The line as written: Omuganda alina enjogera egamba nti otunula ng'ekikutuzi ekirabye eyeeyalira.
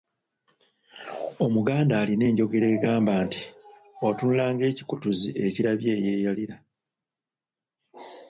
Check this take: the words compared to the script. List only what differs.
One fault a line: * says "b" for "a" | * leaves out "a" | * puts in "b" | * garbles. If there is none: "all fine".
all fine